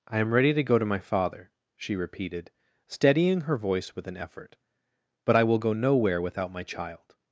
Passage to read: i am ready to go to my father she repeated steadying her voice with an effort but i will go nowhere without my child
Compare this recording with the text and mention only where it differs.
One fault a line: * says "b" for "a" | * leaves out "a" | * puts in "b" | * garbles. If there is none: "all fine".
all fine